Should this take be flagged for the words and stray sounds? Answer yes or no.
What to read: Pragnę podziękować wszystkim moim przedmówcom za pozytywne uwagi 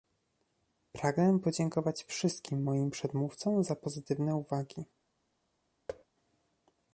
yes